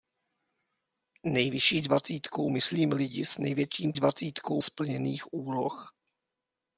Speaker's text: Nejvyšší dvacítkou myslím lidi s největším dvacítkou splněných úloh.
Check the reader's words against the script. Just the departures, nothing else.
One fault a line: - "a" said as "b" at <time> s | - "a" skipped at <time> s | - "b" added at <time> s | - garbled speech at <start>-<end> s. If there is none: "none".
none